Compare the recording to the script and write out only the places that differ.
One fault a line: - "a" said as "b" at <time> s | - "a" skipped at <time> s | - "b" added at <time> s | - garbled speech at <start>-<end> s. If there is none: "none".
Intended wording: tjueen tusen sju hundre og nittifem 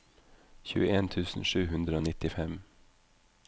none